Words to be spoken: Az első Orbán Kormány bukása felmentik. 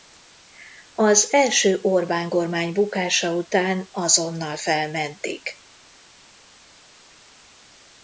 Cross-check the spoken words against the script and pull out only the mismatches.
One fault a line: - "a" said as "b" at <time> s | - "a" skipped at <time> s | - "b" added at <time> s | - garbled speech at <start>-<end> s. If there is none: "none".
- "után azonnal" added at 3.3 s